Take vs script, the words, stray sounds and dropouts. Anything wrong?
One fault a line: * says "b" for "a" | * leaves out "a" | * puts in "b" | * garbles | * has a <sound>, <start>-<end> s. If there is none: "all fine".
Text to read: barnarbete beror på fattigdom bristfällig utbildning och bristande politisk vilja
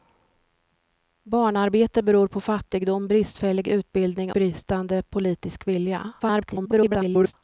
* leaves out "och"
* garbles